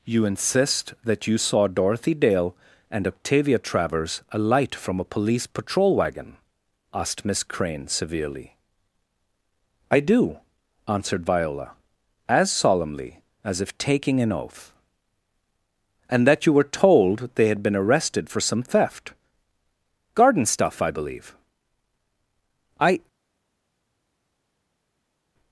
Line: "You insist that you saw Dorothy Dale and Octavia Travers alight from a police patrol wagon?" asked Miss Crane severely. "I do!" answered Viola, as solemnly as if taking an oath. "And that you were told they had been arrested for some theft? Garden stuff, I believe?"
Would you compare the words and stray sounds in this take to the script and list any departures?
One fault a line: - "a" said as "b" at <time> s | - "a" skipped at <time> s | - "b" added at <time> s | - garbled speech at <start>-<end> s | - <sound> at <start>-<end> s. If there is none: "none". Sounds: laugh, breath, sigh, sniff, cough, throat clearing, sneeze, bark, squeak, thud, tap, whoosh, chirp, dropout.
- "I" added at 22.8 s